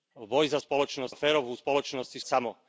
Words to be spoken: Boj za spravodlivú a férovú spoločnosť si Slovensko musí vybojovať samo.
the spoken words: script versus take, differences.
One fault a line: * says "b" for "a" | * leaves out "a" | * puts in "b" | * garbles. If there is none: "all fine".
* says "spoločnosť" for "spravodlivú"
* leaves out "Slovensko musí vybojovať"